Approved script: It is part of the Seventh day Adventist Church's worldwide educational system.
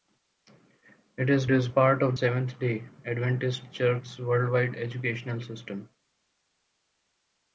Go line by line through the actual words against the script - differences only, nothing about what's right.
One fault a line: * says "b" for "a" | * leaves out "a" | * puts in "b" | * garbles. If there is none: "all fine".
* puts in "is"
* leaves out "the"